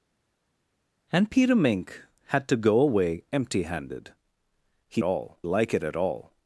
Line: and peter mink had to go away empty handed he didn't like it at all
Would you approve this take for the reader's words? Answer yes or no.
no